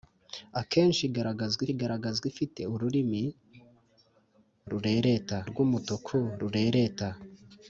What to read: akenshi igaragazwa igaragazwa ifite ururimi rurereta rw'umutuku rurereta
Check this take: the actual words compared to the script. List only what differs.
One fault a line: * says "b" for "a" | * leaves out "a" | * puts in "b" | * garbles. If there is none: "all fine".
all fine